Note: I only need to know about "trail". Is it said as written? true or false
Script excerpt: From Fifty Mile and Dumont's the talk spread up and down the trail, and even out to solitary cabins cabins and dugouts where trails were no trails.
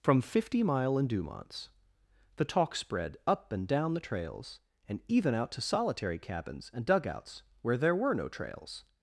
false